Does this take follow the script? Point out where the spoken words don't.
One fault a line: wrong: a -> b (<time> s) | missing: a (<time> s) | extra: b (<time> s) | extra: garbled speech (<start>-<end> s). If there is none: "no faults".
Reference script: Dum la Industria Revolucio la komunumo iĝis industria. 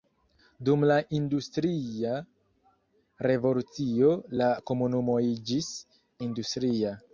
no faults